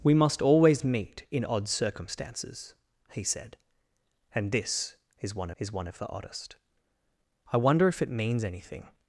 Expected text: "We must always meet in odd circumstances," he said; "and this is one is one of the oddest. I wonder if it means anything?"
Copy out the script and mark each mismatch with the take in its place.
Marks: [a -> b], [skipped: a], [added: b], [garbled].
"We must always meet in odd circumstances," he said; "and this is one is one of the oddest. I wonder if it means anything?"